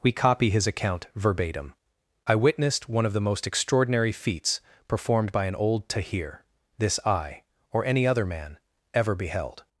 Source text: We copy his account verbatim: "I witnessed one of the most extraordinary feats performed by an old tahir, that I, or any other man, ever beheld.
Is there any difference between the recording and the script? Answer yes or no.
yes